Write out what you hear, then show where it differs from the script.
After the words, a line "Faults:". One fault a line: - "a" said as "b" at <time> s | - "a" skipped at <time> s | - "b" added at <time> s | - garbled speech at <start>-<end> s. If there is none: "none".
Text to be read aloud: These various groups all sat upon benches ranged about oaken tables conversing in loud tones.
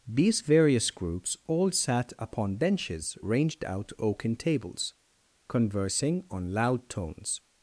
These various groups all sat upon benches ranged out oaken tables conversing on loud tones.
Faults:
- "about" said as "out" at 3.6 s
- "in" said as "on" at 6.3 s